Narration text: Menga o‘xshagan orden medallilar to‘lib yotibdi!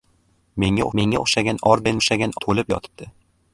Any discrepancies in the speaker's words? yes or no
yes